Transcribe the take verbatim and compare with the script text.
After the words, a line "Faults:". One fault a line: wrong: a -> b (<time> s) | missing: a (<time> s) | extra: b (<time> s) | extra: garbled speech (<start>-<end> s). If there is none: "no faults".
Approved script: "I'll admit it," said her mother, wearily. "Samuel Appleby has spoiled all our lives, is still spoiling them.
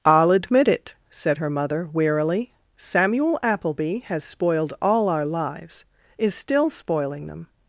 "I'll admit it," said her mother, wearily. "Samuel Appleby has spoiled all our lives, is still spoiling them.
Faults:
no faults